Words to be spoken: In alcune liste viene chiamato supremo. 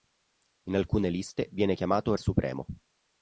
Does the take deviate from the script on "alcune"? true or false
false